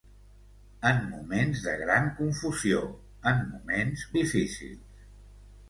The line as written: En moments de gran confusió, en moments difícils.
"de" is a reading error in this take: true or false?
false